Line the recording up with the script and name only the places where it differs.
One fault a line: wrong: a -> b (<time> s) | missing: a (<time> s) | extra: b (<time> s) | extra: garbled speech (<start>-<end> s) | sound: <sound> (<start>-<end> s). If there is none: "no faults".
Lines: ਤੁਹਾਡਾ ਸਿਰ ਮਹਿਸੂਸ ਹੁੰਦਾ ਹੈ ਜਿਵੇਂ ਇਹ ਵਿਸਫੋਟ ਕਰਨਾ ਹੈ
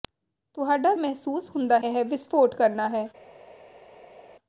missing: ਸਿਰ (0.9 s)
missing: ਹੈ ਜਿਵੇਂ (1.8 s)